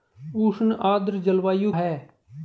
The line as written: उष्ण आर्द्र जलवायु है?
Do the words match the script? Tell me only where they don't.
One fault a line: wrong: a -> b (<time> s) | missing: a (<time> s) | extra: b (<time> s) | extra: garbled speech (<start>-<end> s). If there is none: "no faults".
no faults